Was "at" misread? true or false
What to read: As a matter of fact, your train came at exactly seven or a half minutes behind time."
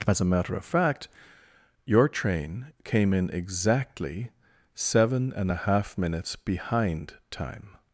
true